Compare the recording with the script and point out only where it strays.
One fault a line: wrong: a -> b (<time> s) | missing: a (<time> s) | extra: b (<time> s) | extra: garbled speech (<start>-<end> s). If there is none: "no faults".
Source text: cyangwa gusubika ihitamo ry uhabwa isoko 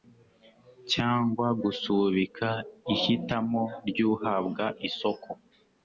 no faults